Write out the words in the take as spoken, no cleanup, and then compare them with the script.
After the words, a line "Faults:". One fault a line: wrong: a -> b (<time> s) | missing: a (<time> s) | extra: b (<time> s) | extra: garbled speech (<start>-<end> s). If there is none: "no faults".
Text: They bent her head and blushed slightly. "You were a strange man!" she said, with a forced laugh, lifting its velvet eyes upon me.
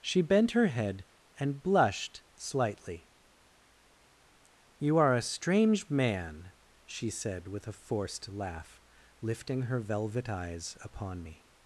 She bent her head and blushed slightly. "You are a strange man!" she said, with a forced laugh, lifting her velvet eyes upon me.
Faults:
wrong: They -> She (0.0 s)
wrong: were -> are (5.0 s)
wrong: its -> her (9.6 s)